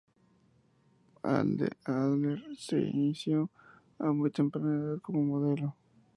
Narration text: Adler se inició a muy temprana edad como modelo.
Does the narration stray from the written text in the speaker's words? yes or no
no